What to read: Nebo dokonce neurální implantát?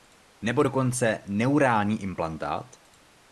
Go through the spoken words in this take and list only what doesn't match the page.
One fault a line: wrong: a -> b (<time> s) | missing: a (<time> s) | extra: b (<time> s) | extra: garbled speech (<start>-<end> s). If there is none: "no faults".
no faults